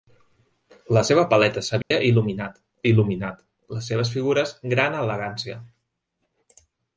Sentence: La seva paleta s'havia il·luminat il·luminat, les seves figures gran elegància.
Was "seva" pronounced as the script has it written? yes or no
yes